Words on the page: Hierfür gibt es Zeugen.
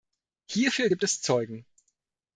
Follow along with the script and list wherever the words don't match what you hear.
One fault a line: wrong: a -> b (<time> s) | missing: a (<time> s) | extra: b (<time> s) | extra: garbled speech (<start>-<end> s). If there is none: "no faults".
no faults